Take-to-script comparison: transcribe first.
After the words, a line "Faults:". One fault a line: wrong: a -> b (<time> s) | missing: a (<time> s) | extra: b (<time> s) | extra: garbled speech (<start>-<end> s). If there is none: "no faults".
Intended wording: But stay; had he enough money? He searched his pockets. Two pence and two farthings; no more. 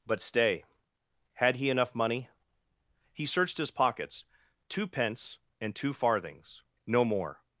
But stay; had he enough money? He searched his pockets. Two pence and two farthings; no more.
Faults:
no faults